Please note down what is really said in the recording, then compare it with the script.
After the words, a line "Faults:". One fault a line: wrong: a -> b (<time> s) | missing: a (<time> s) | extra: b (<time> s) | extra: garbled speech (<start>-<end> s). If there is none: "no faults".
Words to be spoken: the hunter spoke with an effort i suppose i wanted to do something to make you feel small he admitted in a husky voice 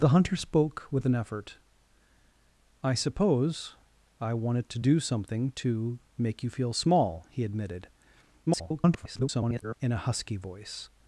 the hunter spoke with an effort i suppose i wanted to do something to make you feel small he admitted [garbled] in a husky voice
Faults:
extra: garbled speech (8.5-9.8 s)